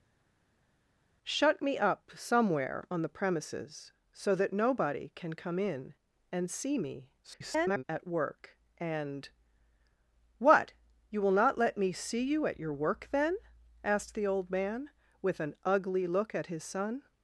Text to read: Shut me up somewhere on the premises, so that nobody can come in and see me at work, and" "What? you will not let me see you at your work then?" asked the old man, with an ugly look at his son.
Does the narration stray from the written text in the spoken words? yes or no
yes